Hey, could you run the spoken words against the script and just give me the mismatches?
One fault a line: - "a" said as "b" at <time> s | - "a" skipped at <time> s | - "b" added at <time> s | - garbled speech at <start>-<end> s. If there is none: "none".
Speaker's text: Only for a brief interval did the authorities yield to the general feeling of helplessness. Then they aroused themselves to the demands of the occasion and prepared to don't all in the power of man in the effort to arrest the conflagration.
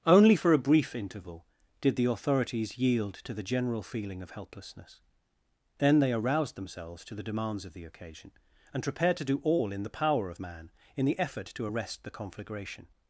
- "don't" said as "do" at 9.3 s